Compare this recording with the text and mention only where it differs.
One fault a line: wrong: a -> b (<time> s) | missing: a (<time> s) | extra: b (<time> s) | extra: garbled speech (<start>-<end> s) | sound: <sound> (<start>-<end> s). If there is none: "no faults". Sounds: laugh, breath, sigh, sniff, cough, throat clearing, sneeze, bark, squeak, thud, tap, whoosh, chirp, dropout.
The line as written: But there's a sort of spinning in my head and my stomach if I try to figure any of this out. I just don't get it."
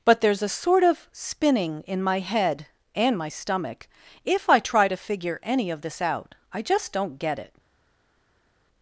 no faults